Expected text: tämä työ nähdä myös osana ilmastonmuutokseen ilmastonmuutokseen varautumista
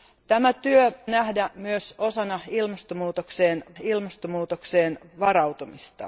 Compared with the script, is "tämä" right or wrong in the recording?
right